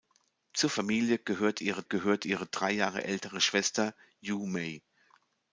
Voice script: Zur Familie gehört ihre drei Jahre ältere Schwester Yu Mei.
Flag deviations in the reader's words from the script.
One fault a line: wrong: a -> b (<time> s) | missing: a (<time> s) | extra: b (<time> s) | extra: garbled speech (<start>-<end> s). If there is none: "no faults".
extra: gehört ihre (1.8 s)